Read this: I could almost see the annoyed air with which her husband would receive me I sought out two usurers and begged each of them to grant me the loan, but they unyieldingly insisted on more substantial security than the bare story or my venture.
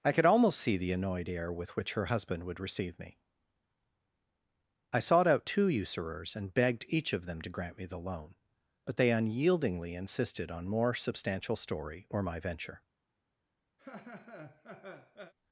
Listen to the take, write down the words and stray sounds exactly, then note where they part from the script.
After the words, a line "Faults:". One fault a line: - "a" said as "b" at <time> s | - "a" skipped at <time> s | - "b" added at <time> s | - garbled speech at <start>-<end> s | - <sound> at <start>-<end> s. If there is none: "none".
I could almost see the annoyed air with which her husband would receive me I sought out two usurers and begged each of them to grant me the loan, but they unyieldingly insisted on more substantial story or my venture.
Faults:
- "security than the bare" skipped at 11.5 s
- laugh at 13.8-15.3 s